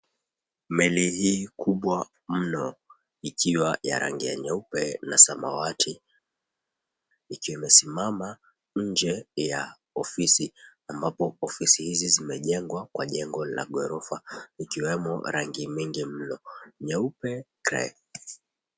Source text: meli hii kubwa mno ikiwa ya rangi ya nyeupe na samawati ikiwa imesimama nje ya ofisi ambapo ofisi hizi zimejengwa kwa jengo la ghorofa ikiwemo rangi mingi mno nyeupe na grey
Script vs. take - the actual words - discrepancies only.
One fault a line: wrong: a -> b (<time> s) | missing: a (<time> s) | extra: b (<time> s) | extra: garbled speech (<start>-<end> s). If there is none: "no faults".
missing: na (17.5 s)